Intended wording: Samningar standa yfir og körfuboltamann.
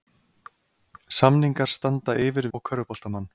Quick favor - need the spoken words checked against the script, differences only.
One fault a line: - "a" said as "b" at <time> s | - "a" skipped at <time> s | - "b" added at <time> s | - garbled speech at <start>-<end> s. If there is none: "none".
none